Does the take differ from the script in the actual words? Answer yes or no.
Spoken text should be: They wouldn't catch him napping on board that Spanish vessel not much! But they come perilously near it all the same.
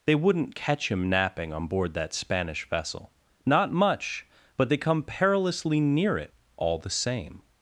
no